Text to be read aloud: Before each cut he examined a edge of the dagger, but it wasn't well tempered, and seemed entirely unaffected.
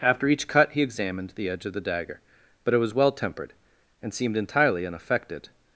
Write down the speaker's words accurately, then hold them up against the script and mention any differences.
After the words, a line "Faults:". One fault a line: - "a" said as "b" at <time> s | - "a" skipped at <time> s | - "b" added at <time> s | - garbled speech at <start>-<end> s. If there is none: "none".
After each cut he examined the edge of the dagger, but it was well tempered, and seemed entirely unaffected.
Faults:
- "Before" said as "After" at 0.0 s
- "a" said as "the" at 1.4 s
- "wasn't" said as "was" at 2.8 s